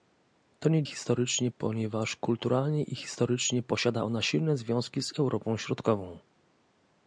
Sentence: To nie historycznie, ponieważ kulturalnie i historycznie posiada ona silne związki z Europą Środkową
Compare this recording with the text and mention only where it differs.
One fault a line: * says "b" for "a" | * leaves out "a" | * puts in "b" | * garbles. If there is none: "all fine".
all fine